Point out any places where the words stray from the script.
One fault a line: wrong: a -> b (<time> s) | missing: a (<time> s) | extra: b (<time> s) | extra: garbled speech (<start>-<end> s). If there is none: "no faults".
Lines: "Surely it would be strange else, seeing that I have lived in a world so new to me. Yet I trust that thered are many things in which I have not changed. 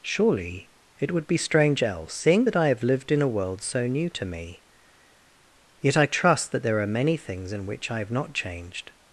wrong: thered -> there (6.6 s)